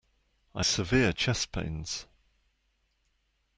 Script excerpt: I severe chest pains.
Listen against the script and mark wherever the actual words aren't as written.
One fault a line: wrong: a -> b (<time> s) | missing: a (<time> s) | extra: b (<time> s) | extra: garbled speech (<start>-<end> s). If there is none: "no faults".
no faults